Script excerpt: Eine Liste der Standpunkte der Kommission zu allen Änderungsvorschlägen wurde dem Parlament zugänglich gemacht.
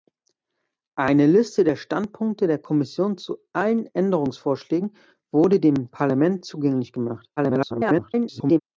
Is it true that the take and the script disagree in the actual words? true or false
true